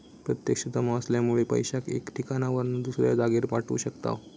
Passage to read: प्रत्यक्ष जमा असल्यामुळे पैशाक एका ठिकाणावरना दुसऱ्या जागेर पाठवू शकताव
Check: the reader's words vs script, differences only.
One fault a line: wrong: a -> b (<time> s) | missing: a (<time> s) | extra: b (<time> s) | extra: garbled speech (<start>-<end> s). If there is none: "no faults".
no faults